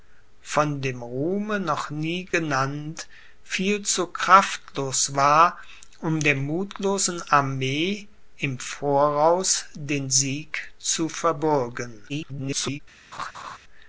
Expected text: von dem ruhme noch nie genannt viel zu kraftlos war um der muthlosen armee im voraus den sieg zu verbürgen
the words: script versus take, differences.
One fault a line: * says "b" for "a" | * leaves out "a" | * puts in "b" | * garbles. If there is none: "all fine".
* garbles